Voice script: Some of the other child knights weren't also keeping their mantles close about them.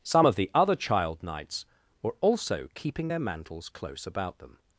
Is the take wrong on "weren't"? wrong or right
wrong